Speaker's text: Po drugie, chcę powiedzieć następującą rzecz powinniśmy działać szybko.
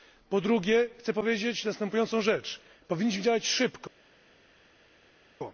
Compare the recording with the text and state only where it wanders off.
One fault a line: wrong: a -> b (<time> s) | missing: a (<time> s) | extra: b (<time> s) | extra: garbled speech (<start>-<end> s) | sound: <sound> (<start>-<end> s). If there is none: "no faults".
no faults